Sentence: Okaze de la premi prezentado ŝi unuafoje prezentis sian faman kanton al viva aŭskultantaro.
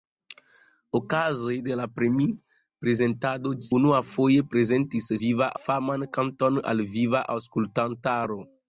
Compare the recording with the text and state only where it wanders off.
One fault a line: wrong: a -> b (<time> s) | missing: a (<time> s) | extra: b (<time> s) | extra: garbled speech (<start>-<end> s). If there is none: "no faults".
missing: ŝi (3.5 s)
wrong: sian -> viva (5.2 s)